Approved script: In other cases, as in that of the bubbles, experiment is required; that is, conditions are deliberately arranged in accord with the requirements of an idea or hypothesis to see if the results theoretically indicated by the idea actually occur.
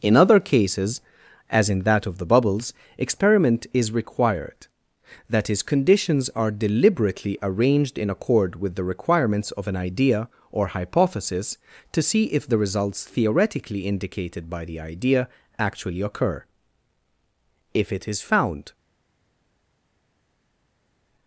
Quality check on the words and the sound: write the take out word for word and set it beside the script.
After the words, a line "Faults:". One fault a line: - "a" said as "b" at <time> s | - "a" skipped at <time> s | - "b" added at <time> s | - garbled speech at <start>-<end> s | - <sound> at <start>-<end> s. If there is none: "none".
In other cases, as in that of the bubbles, experiment is required; that is, conditions are deliberately arranged in accord with the requirements of an idea or hypothesis to see if the results theoretically indicated by the idea actually occur. If it is found
Faults:
- "If it is found" added at 17.7 s